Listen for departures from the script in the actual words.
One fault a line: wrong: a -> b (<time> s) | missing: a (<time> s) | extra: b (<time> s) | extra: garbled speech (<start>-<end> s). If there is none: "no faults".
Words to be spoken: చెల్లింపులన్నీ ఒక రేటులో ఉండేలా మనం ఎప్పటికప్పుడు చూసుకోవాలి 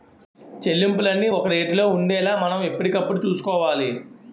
no faults